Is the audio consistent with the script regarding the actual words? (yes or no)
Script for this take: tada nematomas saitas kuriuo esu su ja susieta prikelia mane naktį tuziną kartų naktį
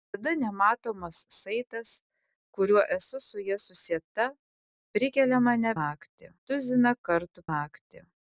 yes